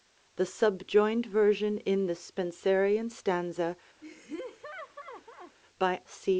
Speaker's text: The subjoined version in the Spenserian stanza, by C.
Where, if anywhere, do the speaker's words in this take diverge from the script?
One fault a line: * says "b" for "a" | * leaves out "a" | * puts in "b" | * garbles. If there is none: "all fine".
all fine